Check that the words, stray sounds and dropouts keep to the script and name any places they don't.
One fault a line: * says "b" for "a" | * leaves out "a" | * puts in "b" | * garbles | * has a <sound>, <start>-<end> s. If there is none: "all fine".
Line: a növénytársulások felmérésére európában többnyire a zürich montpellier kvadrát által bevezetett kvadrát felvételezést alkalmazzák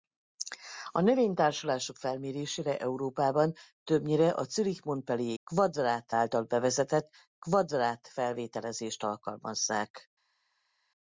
all fine